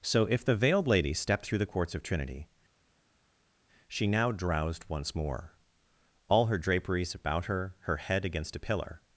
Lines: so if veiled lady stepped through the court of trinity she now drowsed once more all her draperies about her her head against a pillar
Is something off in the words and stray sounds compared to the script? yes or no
yes